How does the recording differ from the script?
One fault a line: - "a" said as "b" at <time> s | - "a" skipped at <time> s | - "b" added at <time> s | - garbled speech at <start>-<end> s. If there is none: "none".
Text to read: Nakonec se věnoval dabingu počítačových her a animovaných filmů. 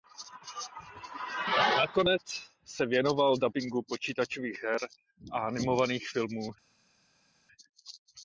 none